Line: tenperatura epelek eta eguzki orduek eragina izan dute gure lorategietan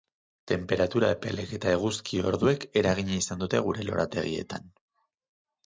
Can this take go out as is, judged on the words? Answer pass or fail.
pass